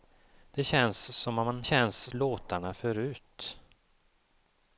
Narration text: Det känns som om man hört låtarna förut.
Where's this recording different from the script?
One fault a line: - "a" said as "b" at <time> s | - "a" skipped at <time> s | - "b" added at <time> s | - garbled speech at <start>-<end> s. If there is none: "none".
- "hört" said as "känns" at 1.6 s